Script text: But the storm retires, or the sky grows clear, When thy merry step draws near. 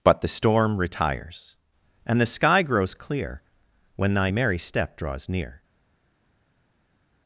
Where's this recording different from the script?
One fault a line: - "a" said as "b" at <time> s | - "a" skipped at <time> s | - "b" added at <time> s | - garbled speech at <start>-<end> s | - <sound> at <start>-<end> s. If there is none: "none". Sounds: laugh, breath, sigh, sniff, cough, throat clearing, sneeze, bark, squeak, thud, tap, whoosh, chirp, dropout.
- "or" said as "and" at 2.1 s